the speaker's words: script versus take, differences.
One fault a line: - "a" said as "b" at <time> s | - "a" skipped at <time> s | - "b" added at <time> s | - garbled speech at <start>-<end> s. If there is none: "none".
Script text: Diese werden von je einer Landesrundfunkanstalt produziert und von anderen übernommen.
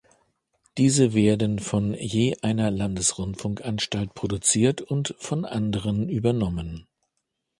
none